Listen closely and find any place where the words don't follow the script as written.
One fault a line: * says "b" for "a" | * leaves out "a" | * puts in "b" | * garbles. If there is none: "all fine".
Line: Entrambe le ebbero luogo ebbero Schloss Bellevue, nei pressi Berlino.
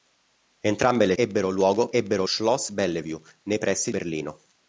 all fine